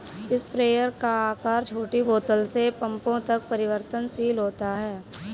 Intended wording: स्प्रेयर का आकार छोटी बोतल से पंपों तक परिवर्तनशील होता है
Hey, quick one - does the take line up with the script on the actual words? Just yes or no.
yes